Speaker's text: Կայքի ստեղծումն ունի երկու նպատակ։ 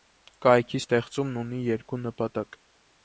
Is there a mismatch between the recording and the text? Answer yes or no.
no